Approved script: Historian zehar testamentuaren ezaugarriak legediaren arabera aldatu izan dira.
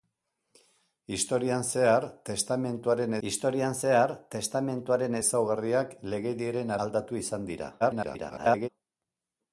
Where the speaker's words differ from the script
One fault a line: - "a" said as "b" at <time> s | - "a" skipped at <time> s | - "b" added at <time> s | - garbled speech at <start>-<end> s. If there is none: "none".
- "historian zehar testamentuaren" added at 3.3 s
- "arabera" skipped at 6.8 s
- garbled speech at 7.8-8.7 s